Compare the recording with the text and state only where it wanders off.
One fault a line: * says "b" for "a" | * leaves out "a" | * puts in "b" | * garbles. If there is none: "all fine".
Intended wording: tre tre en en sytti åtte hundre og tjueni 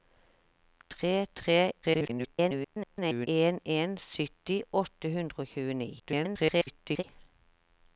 * garbles
* garbles